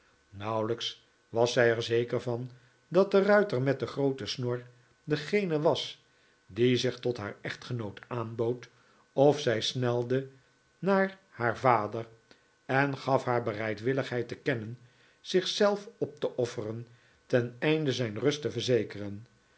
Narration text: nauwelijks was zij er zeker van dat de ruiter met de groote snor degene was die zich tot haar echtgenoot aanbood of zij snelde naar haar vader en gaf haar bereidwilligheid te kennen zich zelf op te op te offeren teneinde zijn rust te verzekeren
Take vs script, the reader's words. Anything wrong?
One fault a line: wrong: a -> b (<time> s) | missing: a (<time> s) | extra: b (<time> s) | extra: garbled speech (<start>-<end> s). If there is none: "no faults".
missing: op te (16.4 s)